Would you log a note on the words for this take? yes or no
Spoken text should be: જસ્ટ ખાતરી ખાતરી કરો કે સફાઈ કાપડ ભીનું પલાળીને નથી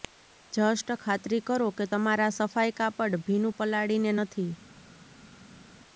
yes